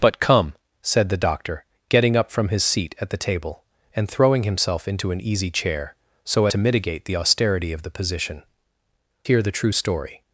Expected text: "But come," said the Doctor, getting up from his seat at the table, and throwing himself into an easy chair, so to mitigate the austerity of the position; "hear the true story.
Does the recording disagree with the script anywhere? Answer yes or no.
no